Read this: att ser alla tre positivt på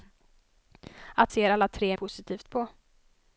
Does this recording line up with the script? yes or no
yes